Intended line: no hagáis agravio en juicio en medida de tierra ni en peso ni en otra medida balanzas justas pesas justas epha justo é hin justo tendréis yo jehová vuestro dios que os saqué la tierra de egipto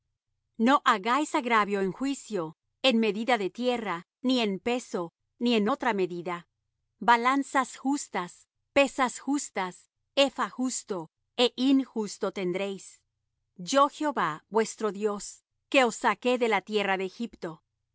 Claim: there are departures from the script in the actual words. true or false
true